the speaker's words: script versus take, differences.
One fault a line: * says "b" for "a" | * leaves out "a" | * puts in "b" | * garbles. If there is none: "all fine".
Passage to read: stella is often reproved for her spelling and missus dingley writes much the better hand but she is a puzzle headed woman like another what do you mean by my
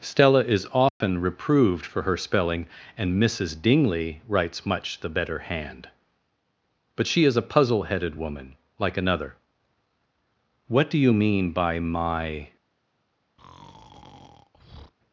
all fine